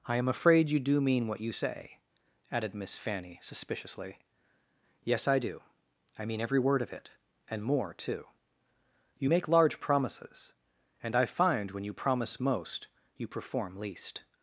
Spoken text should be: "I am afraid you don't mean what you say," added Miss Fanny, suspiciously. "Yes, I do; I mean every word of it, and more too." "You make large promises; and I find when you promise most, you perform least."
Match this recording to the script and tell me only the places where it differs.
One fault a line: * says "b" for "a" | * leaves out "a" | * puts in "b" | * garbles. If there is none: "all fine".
* says "do" for "don't"